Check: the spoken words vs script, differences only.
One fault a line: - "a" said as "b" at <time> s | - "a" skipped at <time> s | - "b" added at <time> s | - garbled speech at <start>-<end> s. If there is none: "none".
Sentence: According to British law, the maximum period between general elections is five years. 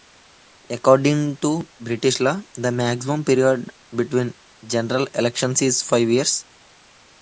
none